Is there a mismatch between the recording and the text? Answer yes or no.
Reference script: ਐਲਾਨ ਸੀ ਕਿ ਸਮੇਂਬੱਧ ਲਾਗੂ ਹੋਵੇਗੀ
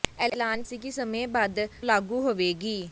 no